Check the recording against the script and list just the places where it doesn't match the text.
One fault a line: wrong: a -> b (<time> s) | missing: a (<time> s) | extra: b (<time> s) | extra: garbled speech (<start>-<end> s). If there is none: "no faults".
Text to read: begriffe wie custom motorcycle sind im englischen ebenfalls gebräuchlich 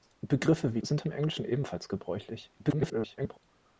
missing: custom motorcycle (0.8 s)
extra: garbled speech (2.6-3.4 s)